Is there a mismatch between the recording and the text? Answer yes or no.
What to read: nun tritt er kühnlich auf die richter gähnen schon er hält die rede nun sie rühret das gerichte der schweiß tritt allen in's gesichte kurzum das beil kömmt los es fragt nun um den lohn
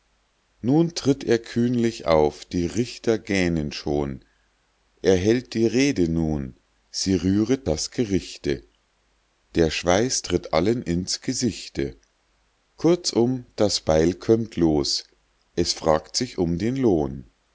yes